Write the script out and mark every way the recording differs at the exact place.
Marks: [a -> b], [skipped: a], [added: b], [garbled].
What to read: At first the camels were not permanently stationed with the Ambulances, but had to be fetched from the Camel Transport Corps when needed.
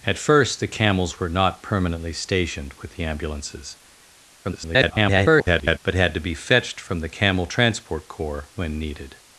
At first the camels were not permanently stationed with the Ambulances, [garbled] but had to be fetched from the Camel Transport Corps when needed.